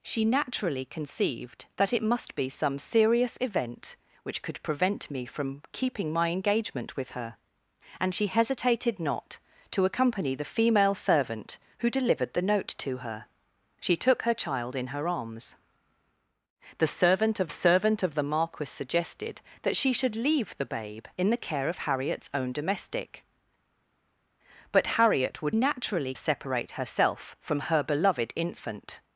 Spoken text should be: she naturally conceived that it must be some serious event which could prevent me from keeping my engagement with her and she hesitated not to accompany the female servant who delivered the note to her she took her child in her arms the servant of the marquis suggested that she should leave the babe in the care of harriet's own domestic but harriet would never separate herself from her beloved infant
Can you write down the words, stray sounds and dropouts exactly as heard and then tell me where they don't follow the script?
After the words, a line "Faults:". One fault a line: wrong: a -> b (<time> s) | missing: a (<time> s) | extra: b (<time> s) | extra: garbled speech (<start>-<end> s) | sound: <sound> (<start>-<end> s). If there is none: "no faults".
she naturally conceived that it must be some serious event which could prevent me from keeping my engagement with her and she hesitated not to accompany the female servant who delivered the note to her she took her child in her arms the servant of servant of the marquis suggested that she should leave the babe in the care of harriet's own domestic but harriet would naturally separate herself from her beloved infant
Faults:
extra: servant of (17.5 s)
wrong: never -> naturally (25.5 s)